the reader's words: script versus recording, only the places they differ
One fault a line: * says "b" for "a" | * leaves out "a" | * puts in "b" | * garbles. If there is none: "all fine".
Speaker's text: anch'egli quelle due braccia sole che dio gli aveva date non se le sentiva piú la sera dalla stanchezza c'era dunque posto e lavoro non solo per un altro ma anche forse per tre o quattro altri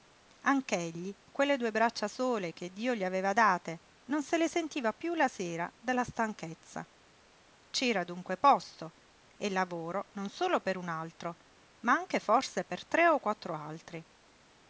all fine